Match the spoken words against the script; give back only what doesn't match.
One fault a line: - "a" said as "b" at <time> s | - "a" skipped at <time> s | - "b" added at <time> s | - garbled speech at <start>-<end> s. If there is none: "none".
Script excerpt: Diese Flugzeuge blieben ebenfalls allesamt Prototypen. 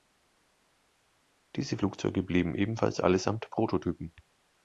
none